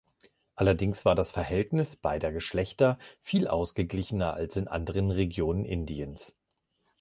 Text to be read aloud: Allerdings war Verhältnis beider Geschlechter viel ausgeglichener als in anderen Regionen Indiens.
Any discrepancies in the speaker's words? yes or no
yes